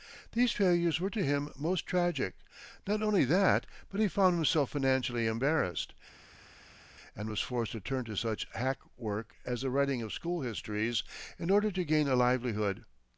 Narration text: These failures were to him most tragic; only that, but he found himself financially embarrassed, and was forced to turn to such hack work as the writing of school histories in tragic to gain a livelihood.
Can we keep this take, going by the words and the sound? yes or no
no